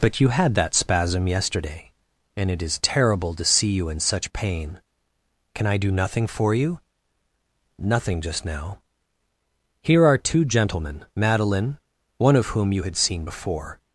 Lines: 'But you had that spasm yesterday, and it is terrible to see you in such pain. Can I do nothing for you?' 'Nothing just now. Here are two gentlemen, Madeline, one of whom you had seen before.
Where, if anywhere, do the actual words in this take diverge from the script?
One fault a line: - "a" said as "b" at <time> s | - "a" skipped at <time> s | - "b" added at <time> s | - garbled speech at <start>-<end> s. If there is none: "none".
none